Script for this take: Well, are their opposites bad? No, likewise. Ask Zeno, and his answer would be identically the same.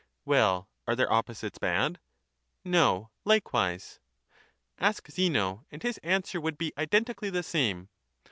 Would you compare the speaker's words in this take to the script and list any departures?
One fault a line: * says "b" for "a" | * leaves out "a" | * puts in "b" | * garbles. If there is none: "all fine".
all fine